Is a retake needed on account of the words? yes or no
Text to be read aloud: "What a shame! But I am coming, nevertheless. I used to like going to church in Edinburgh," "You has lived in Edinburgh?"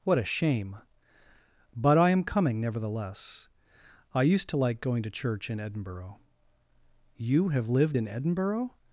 yes